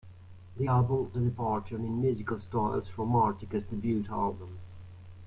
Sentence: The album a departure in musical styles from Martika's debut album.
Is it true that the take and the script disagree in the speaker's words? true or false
false